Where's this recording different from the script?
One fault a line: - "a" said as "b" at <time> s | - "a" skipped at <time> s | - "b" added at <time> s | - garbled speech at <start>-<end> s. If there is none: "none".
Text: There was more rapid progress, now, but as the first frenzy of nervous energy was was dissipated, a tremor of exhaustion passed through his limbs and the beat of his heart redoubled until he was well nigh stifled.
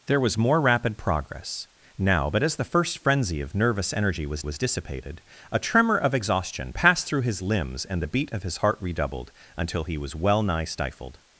none